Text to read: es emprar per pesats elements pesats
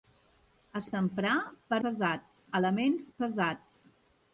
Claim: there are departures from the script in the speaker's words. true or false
false